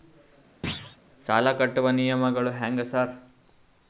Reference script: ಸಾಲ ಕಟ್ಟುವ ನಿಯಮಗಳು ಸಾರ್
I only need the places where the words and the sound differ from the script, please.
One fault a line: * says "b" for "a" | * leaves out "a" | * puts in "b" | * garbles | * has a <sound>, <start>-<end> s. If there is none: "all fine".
* has a thud, 0.6-1.0 s
* puts in "ಹ್ಯಾಂಗ್"